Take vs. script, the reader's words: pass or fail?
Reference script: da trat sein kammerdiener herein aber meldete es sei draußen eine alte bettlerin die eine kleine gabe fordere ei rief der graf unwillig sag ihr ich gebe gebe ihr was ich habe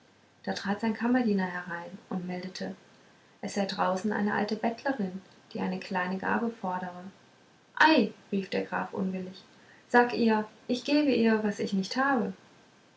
fail